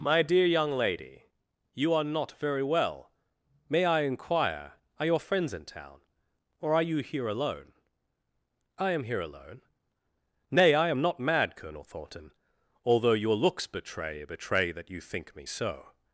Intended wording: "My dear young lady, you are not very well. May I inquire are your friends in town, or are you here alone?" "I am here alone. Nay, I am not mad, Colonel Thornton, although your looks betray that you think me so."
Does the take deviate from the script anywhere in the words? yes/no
yes